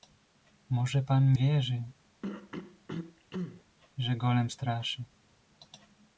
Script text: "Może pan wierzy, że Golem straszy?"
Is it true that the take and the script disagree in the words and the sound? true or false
true